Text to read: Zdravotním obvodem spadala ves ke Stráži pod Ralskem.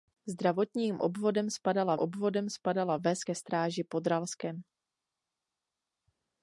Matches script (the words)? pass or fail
fail